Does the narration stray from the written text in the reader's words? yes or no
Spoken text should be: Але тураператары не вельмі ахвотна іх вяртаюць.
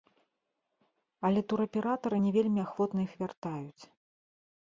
no